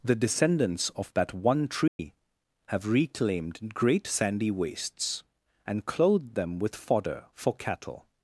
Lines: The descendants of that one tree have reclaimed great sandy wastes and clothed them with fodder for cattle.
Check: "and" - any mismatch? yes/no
no